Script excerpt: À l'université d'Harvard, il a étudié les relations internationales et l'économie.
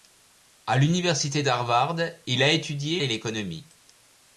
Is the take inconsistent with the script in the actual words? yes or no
yes